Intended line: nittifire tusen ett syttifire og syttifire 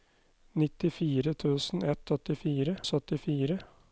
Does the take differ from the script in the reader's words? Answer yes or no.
no